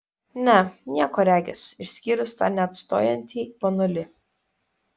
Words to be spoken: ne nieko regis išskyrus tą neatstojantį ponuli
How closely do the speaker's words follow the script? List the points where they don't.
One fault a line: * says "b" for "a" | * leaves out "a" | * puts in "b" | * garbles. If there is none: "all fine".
all fine